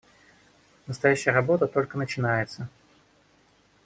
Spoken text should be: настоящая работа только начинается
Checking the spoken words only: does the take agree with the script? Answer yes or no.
yes